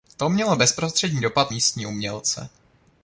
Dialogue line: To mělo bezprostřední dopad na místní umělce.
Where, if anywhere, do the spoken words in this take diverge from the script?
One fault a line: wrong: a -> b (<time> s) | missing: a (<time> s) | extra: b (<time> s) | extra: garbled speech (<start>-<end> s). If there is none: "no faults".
missing: na (1.5 s)